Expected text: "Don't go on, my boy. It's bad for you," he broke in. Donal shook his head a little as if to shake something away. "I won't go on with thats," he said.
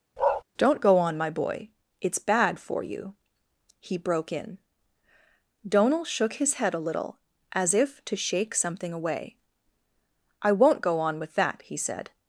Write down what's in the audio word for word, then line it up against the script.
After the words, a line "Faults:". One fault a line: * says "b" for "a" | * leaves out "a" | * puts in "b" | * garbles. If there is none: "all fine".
"Don't go on, my boy. It's bad for you," he broke in. Donal shook his head a little as if to shake something away. "I won't go on with that," he said.
Faults:
* says "that" for "thats"